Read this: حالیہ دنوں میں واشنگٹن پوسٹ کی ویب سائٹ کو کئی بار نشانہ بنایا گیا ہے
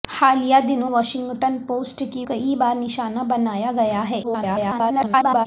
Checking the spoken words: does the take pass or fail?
fail